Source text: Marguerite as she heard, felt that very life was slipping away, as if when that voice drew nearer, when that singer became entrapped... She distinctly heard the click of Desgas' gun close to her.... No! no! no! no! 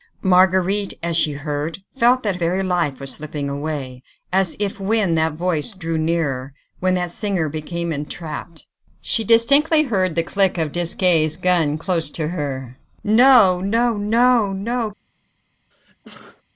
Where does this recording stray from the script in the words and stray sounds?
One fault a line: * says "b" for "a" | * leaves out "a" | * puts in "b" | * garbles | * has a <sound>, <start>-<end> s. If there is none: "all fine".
* has a sneeze, 15.7-16.4 s